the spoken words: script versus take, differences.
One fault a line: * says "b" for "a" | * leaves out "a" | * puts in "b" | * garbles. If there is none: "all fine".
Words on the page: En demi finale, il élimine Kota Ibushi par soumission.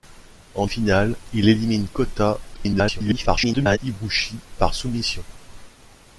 * leaves out "demi"
* garbles